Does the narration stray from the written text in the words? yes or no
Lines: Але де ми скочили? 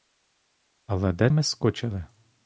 no